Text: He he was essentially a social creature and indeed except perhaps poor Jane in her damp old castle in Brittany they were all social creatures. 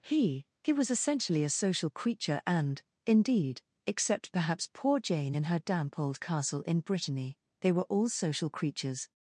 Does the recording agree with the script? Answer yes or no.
yes